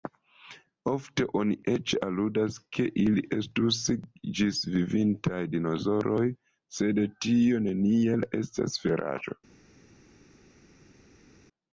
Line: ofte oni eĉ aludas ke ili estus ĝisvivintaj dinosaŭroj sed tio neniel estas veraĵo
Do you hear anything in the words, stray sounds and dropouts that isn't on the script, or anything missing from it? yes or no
no